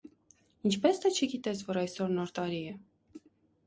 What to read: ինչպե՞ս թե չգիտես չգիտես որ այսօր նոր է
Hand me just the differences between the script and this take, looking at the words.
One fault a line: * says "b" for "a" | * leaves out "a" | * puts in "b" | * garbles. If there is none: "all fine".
* leaves out "չգիտես"
* puts in "տարի"